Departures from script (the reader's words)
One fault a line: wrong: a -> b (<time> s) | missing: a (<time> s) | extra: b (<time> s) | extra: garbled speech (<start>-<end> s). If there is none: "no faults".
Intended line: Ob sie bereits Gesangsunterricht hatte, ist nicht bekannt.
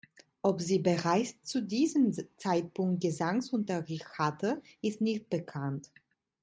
extra: zu diesem Zeitpunkt (1.4 s)